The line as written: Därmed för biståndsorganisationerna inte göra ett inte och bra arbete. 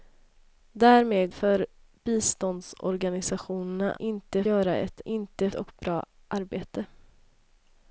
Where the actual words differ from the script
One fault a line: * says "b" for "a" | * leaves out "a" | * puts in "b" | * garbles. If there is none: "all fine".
all fine